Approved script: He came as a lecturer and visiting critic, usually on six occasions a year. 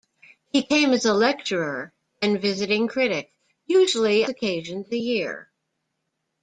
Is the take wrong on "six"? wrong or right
wrong